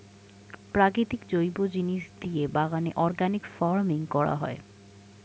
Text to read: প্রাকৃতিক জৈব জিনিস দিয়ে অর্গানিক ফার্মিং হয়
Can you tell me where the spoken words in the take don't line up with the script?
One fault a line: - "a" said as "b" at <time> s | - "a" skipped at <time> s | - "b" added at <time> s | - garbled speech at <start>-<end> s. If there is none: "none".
- "বাগানে" added at 2.5 s
- "করা" added at 4.1 s